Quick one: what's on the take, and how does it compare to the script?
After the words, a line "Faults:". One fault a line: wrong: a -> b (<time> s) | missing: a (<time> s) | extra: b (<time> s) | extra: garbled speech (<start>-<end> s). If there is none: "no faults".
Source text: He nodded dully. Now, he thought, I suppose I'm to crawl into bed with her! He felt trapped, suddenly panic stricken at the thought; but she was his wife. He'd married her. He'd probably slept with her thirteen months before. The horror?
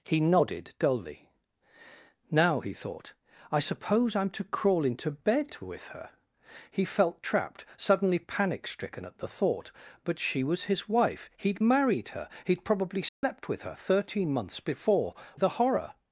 He nodded dully. Now, he thought, I suppose I'm to crawl into bed with her! He felt trapped, suddenly panic stricken at the thought; but she was his wife. He'd married her. He'd probably slept with her thirteen months before. The horror?
Faults:
no faults